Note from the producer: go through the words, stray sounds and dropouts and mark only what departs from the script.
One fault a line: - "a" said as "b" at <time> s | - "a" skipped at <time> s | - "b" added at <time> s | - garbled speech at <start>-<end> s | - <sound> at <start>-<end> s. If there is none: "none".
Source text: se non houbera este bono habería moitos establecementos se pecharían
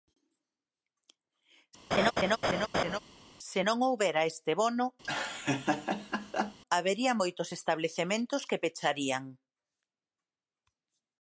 - laugh at 1.9-3.0 s
- laugh at 5.0-6.6 s
- "se" said as "que" at 8.5 s